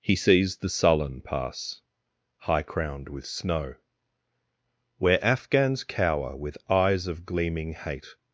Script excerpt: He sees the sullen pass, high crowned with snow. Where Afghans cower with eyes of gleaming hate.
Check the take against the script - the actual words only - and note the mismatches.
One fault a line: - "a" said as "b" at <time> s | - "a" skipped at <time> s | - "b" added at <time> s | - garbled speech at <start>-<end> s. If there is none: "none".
none